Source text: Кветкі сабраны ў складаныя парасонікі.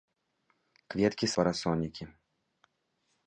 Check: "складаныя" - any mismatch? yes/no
yes